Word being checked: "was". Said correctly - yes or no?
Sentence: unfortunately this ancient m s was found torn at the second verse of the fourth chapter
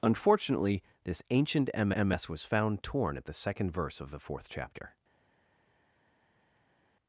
yes